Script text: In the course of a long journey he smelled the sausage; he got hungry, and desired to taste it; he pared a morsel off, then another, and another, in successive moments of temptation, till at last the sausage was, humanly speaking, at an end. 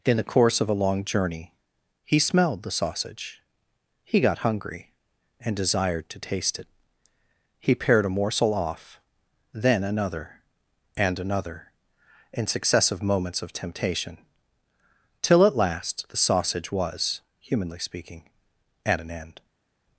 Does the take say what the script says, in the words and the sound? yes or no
yes